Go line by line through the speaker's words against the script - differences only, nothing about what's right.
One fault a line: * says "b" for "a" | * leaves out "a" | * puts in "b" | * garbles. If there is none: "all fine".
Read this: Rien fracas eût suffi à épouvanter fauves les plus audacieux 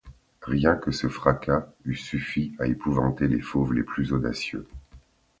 * puts in "que ce"
* puts in "les"